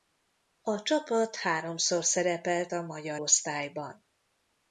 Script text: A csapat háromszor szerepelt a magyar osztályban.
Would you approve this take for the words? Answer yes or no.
yes